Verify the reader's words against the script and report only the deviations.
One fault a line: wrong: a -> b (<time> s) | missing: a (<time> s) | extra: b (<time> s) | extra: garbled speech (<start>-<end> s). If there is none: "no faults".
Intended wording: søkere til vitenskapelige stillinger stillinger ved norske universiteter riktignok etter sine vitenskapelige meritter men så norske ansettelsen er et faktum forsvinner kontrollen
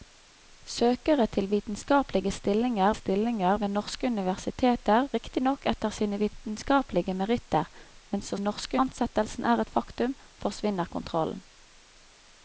no faults